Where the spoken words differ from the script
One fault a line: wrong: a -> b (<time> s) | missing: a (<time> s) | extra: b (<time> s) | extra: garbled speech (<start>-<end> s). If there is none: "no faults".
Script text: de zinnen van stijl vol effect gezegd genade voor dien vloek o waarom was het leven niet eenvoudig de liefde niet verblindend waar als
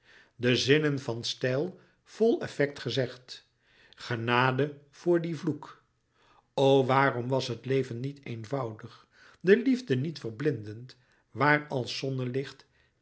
no faults